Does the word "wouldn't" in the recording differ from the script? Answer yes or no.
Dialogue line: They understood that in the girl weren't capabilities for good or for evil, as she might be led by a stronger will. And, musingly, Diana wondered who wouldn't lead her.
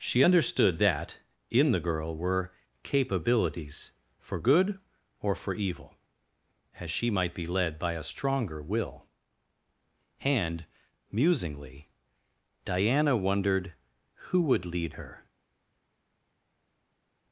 yes